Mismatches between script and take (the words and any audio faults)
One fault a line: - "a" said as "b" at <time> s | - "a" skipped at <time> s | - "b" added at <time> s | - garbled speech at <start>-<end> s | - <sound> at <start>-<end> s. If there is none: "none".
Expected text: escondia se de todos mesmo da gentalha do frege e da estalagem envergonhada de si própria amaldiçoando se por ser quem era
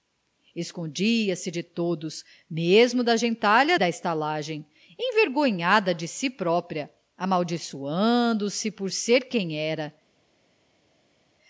- "do frege e" skipped at 3.8 s